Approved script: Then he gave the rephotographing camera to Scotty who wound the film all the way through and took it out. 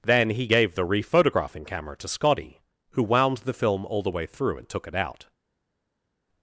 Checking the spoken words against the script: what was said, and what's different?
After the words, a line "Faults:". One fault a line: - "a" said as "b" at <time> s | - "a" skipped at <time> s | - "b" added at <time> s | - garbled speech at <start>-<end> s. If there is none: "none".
Then he gave the rephotographing camera to Scotty who wound the film all the way through and took it out.
Faults:
none